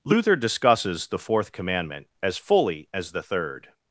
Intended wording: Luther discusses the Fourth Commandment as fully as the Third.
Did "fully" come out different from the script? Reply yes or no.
no